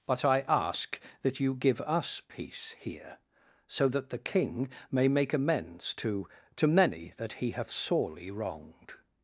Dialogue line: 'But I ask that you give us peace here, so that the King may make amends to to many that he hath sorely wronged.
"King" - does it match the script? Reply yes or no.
yes